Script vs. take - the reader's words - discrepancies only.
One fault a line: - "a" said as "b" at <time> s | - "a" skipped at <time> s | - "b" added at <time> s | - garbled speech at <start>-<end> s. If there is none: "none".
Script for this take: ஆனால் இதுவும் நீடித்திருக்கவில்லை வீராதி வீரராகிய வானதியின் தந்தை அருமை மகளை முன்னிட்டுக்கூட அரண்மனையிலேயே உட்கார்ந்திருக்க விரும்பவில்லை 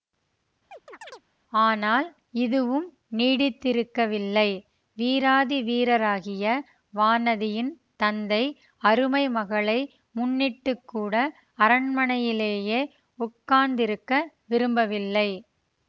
none